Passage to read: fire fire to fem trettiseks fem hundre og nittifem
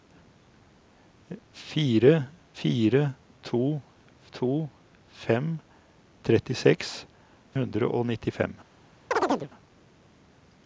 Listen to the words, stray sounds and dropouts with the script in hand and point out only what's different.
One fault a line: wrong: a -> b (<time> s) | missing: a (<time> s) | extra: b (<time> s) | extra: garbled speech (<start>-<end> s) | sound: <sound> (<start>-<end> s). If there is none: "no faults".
extra: to (4.3 s)
missing: fem (6.9 s)
sound: chirp (9.1-9.5 s)